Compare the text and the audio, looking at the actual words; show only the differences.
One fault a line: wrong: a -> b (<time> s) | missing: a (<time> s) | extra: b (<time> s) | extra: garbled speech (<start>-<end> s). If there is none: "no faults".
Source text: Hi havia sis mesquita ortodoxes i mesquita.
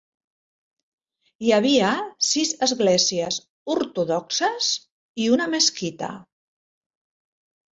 wrong: mesquita -> esglésies (2.7 s)
extra: una (5.3 s)